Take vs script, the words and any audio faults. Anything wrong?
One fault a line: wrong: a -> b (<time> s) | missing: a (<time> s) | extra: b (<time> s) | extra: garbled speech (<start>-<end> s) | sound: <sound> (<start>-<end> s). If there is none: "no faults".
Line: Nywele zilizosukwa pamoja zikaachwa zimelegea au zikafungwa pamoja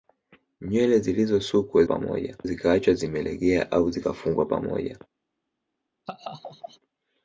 sound: laugh (6.1-6.8 s)